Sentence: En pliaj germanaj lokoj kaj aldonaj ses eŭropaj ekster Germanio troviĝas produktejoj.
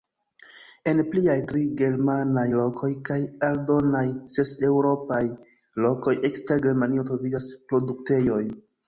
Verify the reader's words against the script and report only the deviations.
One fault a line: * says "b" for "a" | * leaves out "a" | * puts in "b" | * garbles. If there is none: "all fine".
* puts in "tri"
* puts in "lokoj"